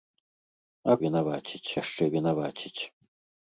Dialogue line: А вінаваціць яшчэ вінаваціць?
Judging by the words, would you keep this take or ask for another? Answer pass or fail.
pass